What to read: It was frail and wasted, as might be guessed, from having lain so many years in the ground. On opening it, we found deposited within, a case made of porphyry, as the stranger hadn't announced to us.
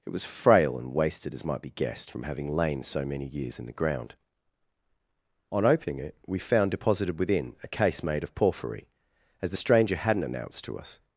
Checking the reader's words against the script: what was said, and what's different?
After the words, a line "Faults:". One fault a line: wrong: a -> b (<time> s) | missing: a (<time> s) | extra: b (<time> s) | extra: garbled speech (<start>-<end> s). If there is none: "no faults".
It was frail and wasted, as might be guessed, from having lain so many years in the ground. On opening it, we found deposited within, a case made of porphyry, as the stranger hadn't announced to us.
Faults:
no faults